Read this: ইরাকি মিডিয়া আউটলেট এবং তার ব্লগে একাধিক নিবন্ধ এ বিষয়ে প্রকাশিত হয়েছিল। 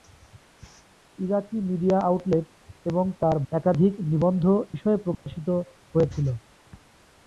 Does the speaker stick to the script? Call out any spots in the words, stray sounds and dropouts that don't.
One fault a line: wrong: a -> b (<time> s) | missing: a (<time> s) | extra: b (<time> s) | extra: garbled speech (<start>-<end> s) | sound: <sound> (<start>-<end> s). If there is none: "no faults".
missing: ব্লগে (3.4 s)
missing: এ (4.4 s)
sound: dropout (5.1-5.3 s)